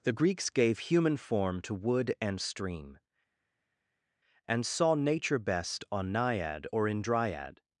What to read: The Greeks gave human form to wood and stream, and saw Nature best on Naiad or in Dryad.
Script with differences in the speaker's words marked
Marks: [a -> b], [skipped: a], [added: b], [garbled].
The Greeks gave human form to wood and stream, and saw Nature best on Naiad or in Dryad.